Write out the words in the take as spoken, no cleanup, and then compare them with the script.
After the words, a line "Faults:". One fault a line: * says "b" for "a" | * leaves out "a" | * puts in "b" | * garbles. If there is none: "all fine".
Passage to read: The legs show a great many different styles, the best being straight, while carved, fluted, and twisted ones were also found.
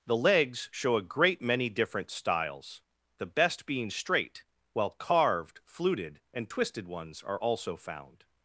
The legs show a great many different styles, the best being straight, while carved, fluted, and twisted ones are also found.
Faults:
* says "are" for "were"